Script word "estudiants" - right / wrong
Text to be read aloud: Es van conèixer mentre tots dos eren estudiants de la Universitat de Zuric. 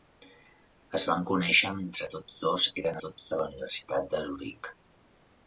wrong